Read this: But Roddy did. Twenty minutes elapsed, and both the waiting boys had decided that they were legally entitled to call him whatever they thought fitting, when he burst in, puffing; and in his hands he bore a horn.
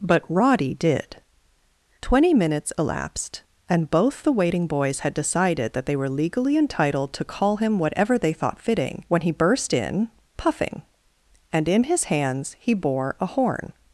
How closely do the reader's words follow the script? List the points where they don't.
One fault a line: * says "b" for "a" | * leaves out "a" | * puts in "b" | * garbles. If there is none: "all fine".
all fine